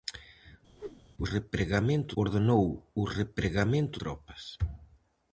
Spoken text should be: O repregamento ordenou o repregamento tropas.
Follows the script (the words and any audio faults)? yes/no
no